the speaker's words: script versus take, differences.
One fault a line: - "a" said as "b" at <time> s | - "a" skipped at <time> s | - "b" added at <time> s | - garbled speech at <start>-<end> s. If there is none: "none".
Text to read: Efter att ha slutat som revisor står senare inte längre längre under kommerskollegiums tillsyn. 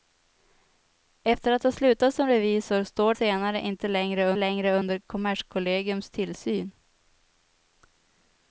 none